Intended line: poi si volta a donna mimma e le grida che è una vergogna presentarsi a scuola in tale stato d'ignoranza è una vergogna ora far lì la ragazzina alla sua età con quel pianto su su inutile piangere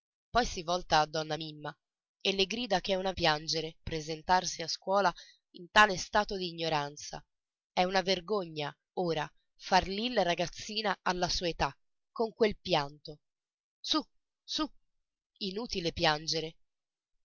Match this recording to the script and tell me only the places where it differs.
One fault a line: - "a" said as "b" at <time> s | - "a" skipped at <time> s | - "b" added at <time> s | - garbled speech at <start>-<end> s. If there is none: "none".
- "vergogna" said as "piangere" at 3.1 s